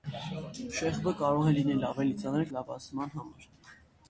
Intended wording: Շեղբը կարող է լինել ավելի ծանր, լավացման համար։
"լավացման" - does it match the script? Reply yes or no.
yes